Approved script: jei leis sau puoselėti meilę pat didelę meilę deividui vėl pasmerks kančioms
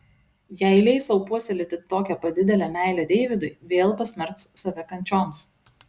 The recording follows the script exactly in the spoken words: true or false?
false